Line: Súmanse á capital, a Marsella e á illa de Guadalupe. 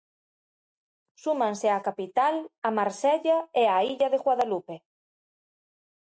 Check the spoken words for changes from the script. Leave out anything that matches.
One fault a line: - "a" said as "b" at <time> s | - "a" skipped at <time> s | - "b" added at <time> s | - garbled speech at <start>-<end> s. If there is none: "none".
none